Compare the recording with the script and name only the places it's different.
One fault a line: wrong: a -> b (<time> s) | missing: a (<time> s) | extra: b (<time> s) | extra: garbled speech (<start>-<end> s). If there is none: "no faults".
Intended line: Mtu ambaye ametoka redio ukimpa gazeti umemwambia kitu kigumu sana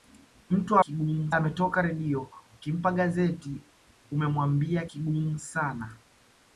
wrong: ambaye -> kigumu (0.8 s)
missing: kitu (4.9 s)